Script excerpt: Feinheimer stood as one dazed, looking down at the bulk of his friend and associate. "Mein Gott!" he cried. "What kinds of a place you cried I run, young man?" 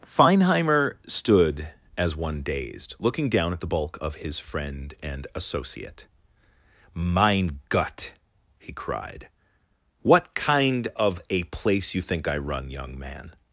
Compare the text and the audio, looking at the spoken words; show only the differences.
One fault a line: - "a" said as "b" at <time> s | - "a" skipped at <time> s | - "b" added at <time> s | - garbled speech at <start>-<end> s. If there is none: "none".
- "kinds" said as "kind" at 10.3 s
- "cried" said as "think" at 12.0 s